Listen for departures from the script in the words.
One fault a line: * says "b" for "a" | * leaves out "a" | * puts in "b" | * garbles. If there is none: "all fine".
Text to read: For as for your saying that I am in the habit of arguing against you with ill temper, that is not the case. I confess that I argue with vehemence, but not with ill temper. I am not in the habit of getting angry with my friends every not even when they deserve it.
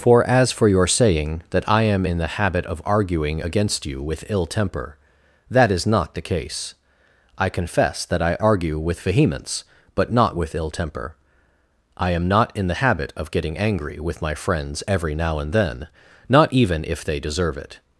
* puts in "now and then"
* says "if" for "when"